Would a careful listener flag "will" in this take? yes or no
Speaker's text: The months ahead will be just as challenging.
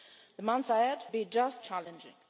yes